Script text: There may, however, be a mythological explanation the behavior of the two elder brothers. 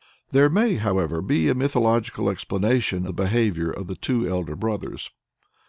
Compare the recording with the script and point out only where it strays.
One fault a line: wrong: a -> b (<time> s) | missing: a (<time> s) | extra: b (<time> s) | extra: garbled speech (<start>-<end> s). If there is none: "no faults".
no faults